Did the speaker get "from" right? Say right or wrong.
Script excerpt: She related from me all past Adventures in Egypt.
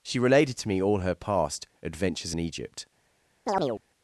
wrong